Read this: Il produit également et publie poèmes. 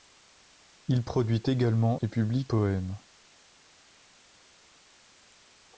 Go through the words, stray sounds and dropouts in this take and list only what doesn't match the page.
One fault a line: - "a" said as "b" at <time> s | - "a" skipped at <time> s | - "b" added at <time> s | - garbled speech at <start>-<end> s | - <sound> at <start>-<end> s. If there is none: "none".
none